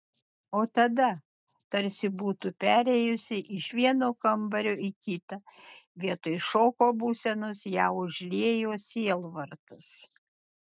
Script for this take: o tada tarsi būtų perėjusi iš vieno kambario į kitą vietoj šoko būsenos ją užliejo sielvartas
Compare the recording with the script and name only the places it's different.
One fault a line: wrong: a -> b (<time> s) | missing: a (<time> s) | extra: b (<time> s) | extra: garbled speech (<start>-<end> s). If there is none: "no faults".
no faults